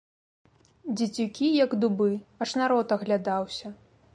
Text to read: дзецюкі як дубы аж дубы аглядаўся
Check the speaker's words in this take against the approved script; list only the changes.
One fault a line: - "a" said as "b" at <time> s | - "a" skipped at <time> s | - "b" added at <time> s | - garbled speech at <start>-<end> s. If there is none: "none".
- "дубы" said as "народ" at 2.6 s